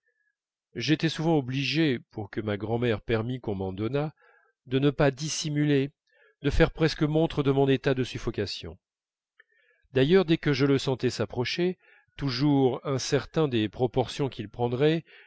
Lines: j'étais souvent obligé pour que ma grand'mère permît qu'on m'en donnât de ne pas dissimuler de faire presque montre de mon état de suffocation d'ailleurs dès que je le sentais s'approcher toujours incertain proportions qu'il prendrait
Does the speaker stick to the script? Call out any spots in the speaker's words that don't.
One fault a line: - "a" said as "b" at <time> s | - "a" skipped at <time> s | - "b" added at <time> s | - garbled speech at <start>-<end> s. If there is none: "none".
- "des" added at 13.5 s